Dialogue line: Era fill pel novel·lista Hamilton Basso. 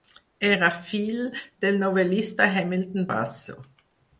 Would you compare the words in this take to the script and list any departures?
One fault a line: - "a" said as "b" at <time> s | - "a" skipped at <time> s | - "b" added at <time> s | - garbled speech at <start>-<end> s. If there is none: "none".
- "pel" said as "del" at 1.7 s